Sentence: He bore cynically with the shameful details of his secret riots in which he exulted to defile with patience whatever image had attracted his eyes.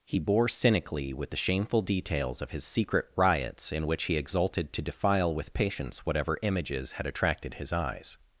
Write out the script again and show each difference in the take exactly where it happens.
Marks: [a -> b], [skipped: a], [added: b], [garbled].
He bore cynically with the shameful details of his secret riots in which he exulted to defile with patience whatever [image -> images] had attracted his eyes.